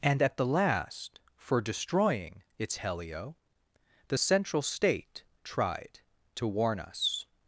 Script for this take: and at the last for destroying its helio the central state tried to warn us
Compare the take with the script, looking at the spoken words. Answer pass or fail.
pass